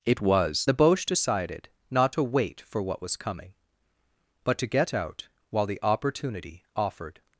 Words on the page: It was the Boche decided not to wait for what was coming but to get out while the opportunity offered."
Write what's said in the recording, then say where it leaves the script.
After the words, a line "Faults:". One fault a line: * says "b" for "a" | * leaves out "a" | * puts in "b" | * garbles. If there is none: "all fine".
It was the Boche decided not to wait for what was coming but to get out while the opportunity offered."
Faults:
all fine